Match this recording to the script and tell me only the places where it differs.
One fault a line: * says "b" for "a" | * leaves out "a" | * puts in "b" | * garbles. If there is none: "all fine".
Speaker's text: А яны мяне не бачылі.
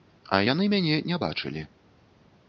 all fine